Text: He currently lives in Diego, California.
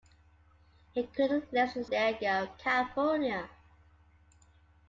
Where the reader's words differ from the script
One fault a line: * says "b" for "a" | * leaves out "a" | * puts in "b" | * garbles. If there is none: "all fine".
all fine